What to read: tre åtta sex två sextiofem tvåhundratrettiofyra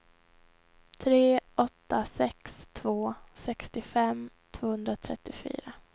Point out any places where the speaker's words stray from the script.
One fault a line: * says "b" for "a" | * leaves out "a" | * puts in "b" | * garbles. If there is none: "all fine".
all fine